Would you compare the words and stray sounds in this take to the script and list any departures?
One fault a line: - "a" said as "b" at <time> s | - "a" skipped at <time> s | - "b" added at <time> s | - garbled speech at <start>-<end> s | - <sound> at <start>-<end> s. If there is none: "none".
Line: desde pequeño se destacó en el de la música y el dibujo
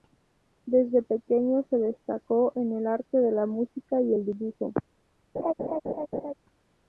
- "arte" added at 2.9 s
- laugh at 5.3-6.3 s